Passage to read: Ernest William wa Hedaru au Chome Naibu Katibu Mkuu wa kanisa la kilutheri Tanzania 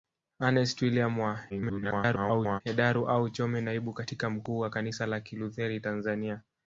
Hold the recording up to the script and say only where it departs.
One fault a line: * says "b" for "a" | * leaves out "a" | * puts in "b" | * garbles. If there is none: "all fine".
* garbles